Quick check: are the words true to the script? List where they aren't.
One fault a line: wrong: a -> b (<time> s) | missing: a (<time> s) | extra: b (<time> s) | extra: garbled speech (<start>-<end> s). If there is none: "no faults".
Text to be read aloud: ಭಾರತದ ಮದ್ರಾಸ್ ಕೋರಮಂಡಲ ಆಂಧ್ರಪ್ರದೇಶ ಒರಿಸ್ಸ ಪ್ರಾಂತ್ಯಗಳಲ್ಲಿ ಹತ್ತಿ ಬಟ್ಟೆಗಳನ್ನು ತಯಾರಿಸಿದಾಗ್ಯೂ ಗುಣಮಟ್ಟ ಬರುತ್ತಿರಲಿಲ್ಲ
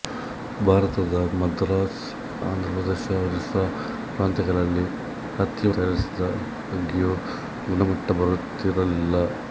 missing: ಕೋರಮಂಡಲ (2.0 s)
missing: ಬಟ್ಟೆಗಳನ್ನು (5.7 s)